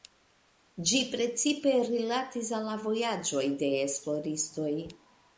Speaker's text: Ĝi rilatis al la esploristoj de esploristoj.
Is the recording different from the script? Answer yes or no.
yes